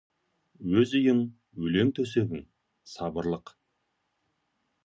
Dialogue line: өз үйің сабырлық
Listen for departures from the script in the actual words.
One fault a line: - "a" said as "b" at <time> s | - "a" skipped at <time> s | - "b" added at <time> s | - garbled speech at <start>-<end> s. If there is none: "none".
- "өлең төсегің" added at 1.7 s